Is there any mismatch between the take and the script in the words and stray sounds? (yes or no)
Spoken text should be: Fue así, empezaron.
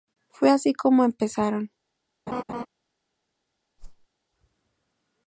yes